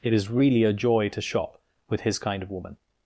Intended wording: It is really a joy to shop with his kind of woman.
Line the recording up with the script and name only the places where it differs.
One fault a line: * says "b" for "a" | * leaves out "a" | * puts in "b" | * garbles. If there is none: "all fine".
all fine